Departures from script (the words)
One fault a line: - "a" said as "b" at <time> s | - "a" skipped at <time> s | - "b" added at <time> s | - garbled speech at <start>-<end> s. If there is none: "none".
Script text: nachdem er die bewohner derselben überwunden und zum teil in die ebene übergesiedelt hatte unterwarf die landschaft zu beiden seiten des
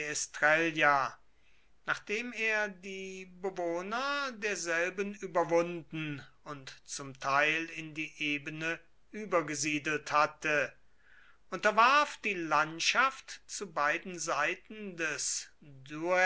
none